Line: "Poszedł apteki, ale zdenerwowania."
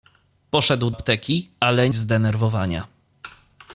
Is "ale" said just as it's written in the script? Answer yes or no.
yes